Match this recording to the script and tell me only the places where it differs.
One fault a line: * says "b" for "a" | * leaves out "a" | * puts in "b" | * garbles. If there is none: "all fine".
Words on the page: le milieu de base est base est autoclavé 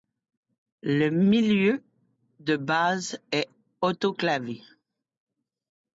* leaves out "base est"